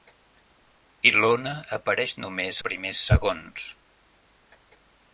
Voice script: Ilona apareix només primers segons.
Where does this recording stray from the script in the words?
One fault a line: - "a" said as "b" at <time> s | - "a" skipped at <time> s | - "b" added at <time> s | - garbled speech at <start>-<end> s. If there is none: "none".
none